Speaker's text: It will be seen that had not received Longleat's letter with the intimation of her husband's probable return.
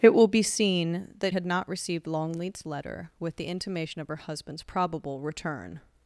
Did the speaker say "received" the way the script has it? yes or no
yes